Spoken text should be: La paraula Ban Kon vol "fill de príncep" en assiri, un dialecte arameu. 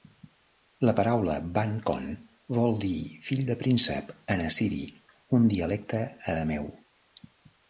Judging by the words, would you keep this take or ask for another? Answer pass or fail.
fail